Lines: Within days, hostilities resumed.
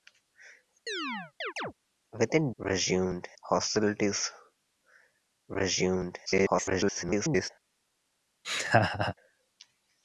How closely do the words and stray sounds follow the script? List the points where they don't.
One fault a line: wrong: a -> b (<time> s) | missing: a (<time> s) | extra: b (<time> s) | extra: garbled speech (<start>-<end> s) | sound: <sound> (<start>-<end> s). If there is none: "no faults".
sound: chirp (0.9-1.7 s)
wrong: days -> resumed (2.6 s)
extra: garbled speech (6.3-7.5 s)
sound: laugh (8.4-9.1 s)